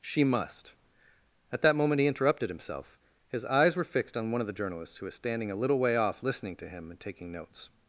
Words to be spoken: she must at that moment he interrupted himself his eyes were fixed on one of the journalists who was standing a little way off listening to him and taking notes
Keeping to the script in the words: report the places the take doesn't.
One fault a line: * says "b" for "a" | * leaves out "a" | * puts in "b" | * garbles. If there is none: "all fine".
all fine